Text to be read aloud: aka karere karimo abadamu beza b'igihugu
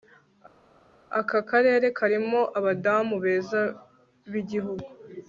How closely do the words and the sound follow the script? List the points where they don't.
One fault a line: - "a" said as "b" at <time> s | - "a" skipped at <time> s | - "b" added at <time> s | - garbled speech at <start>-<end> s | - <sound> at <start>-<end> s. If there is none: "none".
none